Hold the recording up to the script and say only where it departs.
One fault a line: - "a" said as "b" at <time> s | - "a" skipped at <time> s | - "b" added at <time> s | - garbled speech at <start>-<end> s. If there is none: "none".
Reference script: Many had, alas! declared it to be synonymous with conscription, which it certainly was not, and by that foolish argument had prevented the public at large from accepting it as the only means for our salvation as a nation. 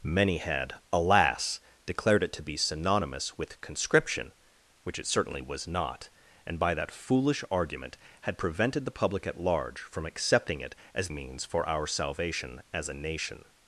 - "the only" skipped at 11.1 s